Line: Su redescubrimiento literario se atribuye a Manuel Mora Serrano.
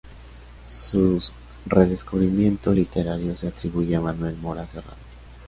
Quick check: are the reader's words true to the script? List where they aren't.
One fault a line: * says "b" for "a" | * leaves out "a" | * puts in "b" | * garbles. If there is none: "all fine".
all fine